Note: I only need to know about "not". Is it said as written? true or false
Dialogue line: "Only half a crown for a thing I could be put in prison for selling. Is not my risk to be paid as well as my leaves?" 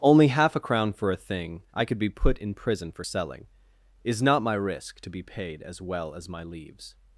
true